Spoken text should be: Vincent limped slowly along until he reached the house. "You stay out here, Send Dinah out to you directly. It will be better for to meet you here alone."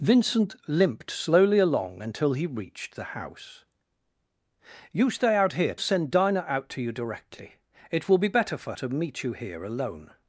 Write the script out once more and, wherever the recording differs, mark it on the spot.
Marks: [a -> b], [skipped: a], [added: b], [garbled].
Vincent limped slowly along until he reached the house. "You stay out here, Send Dinah out to you directly. It will be better for to meet you here alone."